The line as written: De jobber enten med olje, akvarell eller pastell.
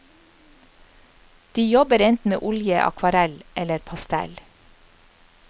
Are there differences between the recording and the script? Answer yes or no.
no